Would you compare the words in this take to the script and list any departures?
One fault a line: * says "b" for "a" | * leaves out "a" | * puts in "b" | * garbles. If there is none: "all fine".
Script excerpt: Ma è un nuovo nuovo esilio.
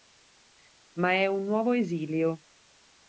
* leaves out "nuovo"